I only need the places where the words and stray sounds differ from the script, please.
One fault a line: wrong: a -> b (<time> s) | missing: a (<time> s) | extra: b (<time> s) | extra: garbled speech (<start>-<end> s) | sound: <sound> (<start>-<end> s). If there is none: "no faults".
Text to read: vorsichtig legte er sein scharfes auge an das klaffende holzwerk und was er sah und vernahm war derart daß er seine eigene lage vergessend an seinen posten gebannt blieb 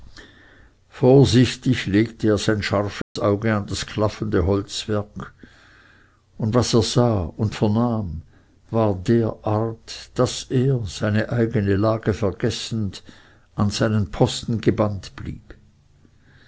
sound: dropout (3.0-3.2 s)